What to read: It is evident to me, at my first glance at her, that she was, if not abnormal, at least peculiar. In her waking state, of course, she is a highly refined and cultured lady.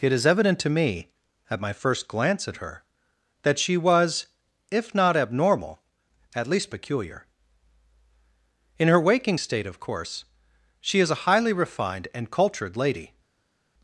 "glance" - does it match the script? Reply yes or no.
yes